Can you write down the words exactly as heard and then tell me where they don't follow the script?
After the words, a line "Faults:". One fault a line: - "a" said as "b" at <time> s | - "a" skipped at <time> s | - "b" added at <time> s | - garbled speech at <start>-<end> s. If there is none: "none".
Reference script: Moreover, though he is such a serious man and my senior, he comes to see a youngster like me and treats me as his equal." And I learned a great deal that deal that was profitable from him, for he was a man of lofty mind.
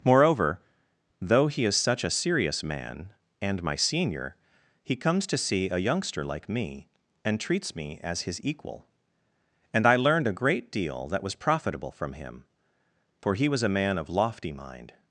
Moreover, though he is such a serious man and my senior, he comes to see a youngster like me and treats me as his equal." And I learned a great deal that was profitable from him, for he was a man of lofty mind.
Faults:
- "deal that" skipped at 11.2 s